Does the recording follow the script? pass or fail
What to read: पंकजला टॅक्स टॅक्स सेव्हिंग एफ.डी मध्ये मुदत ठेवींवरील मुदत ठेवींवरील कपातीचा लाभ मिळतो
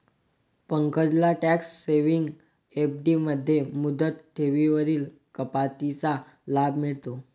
fail